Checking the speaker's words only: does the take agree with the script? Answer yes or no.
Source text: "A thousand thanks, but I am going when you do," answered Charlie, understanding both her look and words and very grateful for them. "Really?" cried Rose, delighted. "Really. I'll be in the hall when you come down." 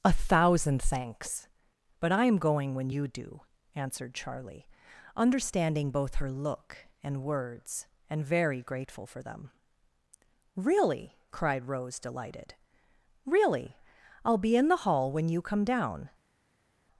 yes